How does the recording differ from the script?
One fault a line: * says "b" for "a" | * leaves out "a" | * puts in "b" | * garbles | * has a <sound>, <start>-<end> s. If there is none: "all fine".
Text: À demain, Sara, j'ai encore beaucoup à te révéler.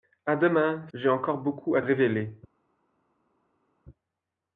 * leaves out "Sara"
* leaves out "te"